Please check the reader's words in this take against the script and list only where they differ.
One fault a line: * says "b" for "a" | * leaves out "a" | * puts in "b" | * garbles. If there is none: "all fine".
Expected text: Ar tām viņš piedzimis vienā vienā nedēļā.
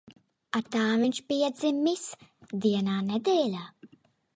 * leaves out "vienā"